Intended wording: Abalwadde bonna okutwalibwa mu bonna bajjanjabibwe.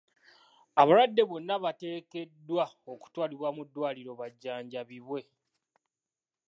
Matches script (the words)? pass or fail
fail